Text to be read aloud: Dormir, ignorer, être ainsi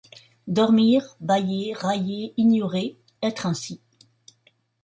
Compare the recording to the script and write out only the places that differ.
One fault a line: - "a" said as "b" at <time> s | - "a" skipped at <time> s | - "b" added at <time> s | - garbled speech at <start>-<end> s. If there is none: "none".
- "bâiller railler" added at 1.2 s